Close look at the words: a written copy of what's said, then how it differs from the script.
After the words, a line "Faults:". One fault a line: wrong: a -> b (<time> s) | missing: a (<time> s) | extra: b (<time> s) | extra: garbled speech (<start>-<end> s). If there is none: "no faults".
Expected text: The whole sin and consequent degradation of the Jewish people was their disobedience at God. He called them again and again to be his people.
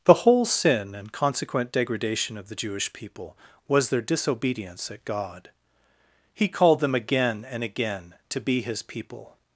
The whole sin and consequent degradation of the Jewish people was their disobedience at God. He called them again and again to be his people.
Faults:
no faults